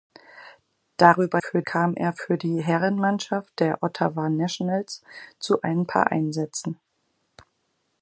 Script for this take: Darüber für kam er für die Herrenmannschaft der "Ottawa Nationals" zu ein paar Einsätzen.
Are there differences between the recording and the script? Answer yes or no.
no